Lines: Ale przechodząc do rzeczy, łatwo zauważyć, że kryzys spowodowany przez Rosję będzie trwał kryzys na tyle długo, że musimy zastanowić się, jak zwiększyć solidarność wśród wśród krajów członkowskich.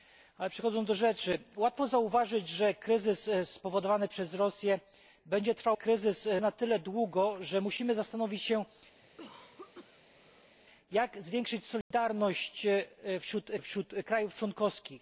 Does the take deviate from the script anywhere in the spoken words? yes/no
no